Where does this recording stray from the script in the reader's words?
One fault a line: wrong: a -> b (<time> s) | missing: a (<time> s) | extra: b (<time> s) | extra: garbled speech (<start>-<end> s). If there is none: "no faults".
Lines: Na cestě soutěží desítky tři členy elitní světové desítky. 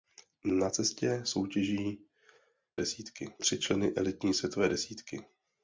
no faults